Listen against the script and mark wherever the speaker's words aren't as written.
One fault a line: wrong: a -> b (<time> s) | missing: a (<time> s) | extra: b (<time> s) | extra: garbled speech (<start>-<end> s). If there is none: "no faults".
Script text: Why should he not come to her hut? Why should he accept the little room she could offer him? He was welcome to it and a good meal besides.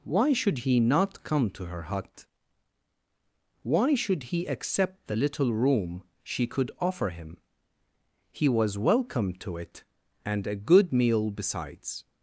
no faults